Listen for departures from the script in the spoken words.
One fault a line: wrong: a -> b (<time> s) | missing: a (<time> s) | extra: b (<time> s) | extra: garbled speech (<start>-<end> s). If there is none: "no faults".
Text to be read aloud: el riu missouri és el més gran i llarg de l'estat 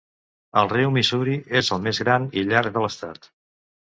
no faults